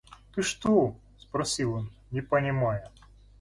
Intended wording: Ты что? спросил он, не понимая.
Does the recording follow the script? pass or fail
pass